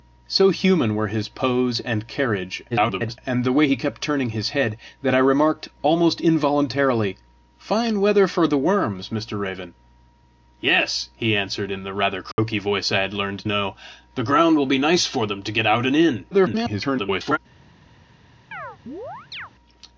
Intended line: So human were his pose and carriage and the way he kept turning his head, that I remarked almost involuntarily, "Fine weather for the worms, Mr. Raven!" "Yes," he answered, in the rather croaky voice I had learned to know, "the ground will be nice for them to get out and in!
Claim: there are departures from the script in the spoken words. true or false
true